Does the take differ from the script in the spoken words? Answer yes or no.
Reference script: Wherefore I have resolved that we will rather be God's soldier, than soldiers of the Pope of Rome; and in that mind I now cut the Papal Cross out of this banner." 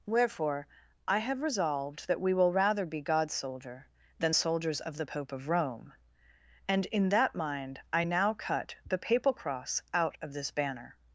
no